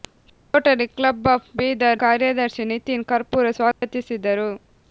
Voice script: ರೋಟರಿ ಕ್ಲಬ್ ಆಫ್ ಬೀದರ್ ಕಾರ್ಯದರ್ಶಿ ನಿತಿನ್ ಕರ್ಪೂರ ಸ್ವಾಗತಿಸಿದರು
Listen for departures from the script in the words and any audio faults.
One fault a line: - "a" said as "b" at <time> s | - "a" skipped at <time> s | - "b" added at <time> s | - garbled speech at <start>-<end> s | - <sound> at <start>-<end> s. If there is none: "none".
- dropout at 3.7-3.8 s